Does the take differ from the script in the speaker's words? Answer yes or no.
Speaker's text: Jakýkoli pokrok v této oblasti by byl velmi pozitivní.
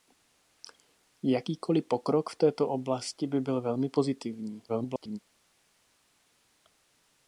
yes